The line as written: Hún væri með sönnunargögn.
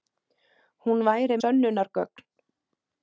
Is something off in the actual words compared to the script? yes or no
yes